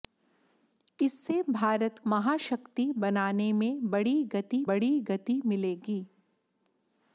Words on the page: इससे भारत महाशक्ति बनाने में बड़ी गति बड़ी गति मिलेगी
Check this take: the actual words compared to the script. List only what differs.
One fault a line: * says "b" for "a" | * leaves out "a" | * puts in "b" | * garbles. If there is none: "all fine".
all fine